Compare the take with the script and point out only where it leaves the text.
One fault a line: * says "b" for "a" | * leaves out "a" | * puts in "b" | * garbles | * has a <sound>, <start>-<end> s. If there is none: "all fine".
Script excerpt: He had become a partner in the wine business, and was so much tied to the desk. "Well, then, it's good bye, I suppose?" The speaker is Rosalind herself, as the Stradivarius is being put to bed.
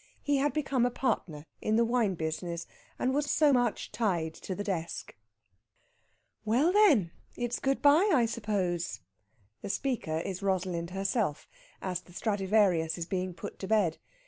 all fine